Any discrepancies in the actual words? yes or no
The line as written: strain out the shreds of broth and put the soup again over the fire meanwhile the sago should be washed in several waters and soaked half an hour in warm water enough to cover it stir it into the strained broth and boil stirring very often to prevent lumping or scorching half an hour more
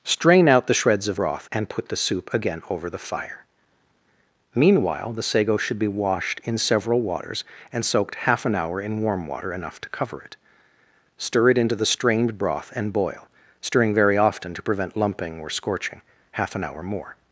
no